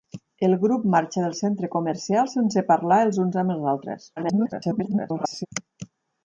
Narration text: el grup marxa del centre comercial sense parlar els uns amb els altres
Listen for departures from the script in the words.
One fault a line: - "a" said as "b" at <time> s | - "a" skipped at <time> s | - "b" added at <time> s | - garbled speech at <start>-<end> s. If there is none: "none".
- garbled speech at 4.2-5.5 s